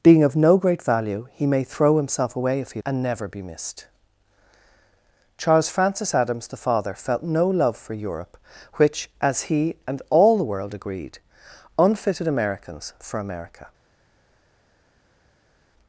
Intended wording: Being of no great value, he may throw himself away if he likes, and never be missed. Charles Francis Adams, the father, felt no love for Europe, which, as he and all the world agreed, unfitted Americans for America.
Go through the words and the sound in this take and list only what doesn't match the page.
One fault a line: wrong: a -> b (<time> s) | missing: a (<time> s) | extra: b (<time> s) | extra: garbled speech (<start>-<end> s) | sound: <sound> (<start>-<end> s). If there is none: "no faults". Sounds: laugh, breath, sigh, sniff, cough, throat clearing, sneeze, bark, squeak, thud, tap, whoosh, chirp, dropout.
missing: likes (2.8 s)